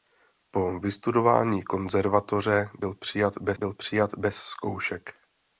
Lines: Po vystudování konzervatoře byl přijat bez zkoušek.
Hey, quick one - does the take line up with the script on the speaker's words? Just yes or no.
no